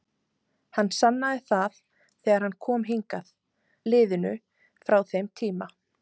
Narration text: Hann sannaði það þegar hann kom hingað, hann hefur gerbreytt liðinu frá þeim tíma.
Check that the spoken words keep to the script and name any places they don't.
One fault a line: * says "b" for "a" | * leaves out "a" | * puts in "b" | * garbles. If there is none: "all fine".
* leaves out "hann hefur gerbreytt"